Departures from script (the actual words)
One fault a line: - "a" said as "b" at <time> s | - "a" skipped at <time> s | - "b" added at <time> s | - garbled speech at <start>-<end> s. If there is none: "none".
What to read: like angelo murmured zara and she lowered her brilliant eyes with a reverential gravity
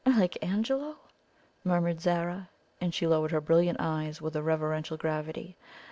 none